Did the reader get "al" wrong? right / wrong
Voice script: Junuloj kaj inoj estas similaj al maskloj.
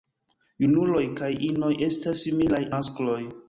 wrong